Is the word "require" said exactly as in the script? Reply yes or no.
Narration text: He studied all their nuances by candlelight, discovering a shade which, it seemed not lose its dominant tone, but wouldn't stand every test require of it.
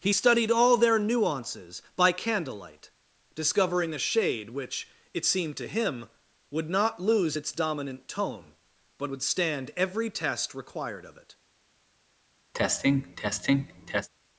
no